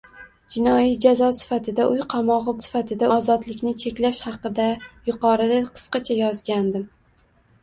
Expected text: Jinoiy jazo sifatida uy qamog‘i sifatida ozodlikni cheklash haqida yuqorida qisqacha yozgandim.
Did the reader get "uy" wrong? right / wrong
right